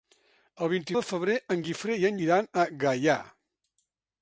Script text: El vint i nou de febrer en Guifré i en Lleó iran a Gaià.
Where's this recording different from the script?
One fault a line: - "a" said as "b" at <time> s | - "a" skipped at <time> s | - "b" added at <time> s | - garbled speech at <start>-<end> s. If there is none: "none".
- "nou" skipped at 0.9 s
- "Lleó" skipped at 2.2 s